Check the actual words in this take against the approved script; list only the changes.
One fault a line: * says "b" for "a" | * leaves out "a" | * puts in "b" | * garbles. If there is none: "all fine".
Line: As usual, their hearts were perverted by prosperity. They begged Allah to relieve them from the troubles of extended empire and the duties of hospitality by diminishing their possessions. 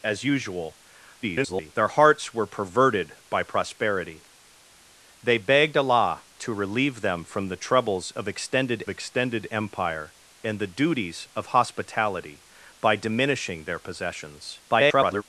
* garbles
* puts in "extended"
* garbles